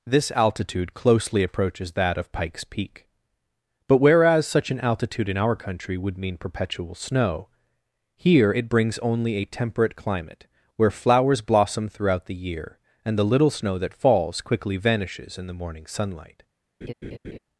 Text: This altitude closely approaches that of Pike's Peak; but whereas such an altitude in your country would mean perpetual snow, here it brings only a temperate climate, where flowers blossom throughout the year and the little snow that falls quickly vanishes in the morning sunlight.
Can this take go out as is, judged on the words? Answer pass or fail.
fail